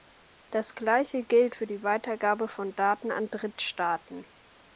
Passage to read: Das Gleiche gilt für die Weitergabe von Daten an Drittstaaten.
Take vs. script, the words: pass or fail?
pass